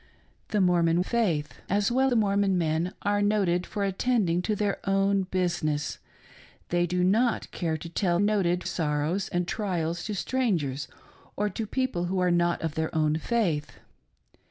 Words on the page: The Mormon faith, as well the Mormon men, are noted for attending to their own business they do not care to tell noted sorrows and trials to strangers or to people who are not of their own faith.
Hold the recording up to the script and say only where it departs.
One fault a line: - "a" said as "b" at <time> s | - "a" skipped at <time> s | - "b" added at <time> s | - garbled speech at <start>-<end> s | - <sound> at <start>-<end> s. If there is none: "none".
none